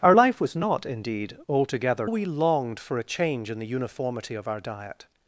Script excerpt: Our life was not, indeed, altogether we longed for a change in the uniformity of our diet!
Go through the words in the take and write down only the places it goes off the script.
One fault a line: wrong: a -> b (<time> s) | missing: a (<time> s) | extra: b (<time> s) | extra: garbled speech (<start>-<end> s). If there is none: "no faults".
no faults